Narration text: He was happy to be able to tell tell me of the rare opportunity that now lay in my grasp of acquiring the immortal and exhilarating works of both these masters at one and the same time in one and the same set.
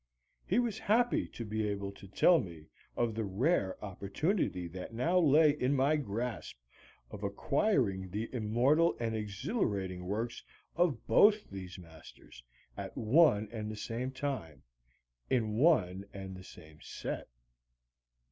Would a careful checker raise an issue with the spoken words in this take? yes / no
yes